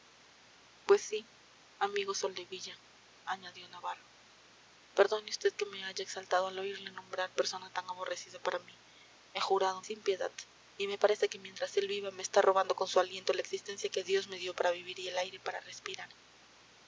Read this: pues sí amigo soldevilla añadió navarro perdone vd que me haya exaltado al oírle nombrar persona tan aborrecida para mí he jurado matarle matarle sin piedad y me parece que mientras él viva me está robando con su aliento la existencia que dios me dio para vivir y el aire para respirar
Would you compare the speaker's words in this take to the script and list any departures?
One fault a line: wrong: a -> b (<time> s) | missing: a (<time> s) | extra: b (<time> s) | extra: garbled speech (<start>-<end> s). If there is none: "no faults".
missing: matarle matarle (9.8 s)